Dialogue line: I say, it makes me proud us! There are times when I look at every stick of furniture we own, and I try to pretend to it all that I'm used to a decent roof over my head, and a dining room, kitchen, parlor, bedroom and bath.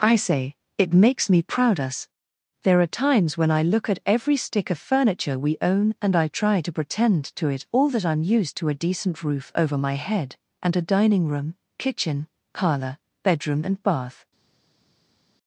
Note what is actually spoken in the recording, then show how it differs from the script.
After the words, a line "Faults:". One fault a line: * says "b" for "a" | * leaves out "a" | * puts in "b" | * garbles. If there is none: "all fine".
I say, it makes me proud us! There are times when I look at every stick of furniture we own, and I try to pretend to it all that I'm used to a decent roof over my head, and a dining room, kitchen, parlor, bedroom and bath.
Faults:
all fine